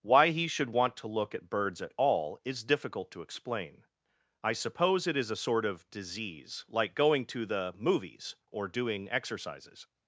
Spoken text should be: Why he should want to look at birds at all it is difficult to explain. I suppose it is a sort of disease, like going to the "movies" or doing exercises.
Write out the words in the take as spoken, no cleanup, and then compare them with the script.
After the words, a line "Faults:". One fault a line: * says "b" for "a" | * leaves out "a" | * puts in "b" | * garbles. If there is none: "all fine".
Why he should want to look at birds at all is difficult to explain. I suppose it is a sort of disease, like going to the "movies" or doing exercises.
Faults:
* leaves out "it"